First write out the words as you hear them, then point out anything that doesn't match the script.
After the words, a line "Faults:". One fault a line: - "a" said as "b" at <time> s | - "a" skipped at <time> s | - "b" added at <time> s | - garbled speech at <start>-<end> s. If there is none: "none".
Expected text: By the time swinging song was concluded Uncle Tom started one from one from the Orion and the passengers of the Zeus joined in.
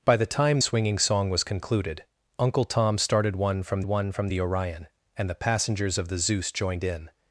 By the time swinging song was concluded Uncle Tom started one from one from the Orion and the passengers of the Zeus joined in.
Faults:
none